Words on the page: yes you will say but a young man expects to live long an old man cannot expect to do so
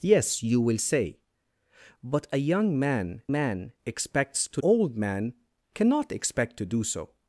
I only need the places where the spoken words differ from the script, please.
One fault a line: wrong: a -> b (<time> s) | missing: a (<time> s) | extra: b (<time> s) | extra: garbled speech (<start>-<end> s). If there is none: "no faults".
extra: man (3.3 s)
missing: live long an (4.6 s)